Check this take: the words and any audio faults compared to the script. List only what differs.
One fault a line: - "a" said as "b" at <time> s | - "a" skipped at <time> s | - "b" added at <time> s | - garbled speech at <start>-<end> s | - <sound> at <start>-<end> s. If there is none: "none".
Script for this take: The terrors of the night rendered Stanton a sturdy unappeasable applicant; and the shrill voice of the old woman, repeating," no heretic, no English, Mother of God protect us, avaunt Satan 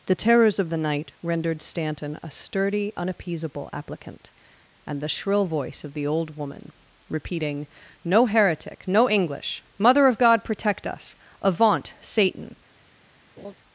- laugh at 13.4-13.5 s